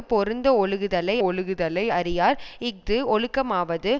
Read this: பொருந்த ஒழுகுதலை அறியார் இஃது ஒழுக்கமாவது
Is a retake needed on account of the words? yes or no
yes